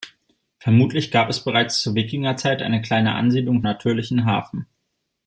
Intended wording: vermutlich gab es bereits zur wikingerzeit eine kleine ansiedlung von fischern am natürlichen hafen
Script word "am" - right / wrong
wrong